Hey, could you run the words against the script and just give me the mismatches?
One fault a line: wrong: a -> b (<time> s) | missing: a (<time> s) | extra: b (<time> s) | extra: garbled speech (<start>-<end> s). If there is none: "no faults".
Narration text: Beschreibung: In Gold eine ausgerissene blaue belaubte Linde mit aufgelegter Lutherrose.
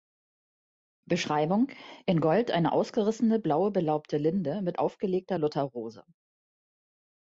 no faults